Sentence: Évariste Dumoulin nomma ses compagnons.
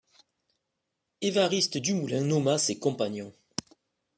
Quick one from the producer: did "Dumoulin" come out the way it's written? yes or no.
yes